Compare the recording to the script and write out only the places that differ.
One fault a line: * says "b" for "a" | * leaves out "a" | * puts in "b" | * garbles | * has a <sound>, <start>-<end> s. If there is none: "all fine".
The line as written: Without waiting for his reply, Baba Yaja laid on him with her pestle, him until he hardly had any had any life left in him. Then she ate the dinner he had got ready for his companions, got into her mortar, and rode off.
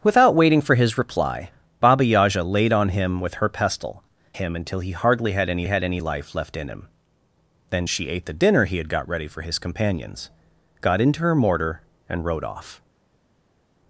all fine